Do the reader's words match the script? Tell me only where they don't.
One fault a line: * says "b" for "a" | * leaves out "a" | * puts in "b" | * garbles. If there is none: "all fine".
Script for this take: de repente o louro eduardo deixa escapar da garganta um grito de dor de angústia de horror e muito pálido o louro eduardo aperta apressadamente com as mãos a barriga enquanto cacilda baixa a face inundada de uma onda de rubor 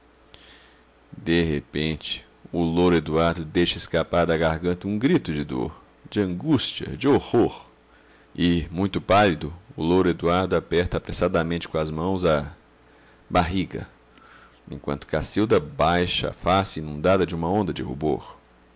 all fine